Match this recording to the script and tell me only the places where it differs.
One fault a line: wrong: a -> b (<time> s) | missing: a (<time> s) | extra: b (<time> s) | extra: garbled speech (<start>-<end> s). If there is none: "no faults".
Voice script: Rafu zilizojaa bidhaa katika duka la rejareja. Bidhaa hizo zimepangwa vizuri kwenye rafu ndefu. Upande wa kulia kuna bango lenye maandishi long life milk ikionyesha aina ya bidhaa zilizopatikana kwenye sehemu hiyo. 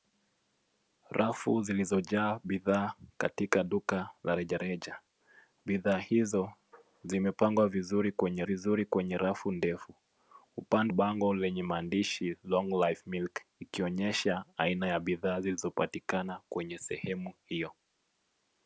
extra: vizuri kwenye (8.4 s)
missing: wa kulia kuna (10.9 s)